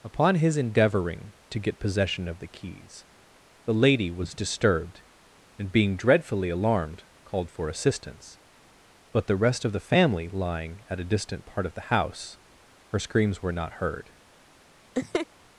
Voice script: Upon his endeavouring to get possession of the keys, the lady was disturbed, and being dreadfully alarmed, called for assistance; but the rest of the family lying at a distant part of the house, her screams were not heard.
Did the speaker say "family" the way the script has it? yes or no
yes